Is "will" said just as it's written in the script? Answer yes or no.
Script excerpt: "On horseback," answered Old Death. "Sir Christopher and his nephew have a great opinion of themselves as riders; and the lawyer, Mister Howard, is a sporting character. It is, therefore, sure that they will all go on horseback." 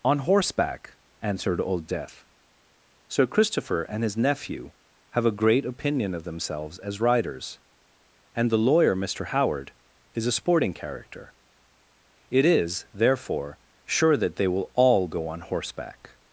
yes